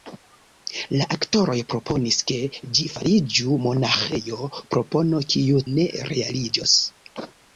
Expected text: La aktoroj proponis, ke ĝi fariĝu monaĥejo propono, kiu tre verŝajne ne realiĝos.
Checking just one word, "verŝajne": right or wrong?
wrong